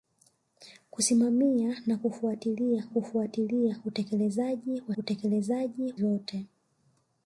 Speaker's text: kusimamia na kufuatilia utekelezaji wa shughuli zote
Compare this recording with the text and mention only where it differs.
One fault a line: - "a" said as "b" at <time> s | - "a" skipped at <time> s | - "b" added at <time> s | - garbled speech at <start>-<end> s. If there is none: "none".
- "kufuatilia" added at 2.9 s
- "shughuli" said as "utekelezaji" at 5.0 s